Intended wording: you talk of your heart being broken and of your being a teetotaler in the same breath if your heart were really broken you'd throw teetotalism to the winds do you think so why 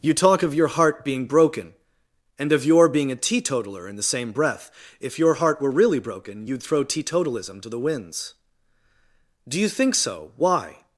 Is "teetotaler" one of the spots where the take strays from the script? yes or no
no